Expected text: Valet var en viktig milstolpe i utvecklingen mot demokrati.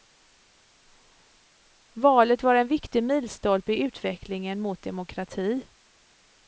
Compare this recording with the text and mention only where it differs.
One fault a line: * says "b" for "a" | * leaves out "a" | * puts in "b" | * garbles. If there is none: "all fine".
all fine